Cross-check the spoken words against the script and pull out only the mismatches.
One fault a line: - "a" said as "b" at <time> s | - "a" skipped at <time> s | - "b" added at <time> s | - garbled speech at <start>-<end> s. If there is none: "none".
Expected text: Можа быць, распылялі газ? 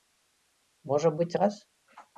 - "распылялі" skipped at 1.3 s